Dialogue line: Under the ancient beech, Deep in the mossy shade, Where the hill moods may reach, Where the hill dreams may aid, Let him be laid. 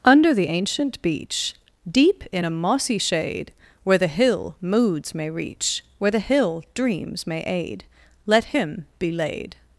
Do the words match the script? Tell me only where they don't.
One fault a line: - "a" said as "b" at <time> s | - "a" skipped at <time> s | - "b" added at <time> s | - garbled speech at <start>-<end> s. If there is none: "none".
- "the" said as "a" at 2.4 s